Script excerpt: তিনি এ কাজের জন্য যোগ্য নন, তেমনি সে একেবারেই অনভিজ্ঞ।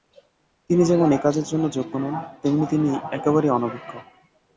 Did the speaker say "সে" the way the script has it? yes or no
no